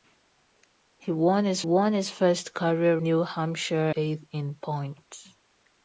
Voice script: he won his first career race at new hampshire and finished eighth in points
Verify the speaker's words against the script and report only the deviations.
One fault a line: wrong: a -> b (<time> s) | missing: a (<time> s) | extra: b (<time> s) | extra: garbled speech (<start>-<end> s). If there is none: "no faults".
extra: won his (1.6 s)
missing: race at (3.0 s)
missing: and finished (3.9 s)